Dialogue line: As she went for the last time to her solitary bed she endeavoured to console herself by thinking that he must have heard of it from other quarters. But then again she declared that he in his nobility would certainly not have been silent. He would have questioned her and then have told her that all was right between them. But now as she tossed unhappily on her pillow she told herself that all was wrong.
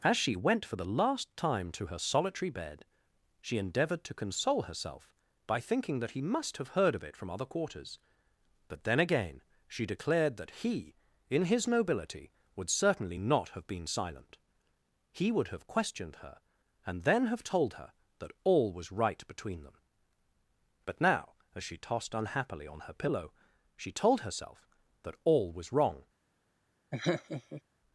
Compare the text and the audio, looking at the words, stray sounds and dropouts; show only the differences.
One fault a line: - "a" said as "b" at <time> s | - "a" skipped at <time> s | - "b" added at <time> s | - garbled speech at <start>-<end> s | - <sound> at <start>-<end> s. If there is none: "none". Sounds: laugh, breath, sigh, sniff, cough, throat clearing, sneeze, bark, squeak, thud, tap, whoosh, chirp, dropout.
- laugh at 26.9-27.6 s